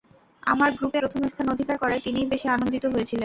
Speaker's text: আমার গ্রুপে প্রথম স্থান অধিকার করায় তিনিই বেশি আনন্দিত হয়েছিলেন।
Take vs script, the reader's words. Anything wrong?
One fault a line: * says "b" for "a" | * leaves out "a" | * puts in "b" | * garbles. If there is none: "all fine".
all fine